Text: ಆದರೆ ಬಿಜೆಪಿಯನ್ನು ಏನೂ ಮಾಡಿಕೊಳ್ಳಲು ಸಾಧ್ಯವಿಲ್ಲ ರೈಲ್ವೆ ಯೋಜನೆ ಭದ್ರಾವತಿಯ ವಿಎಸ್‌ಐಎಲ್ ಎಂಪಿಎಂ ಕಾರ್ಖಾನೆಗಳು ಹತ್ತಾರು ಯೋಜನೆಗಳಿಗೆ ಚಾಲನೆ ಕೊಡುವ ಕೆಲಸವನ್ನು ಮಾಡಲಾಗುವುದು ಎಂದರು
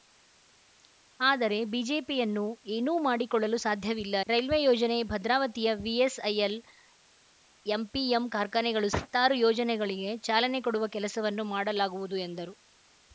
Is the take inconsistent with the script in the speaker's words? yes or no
no